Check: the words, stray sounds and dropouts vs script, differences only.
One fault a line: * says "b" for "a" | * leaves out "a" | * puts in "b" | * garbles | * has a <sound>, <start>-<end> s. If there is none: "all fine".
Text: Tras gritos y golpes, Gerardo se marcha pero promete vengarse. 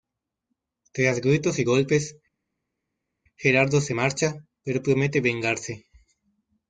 all fine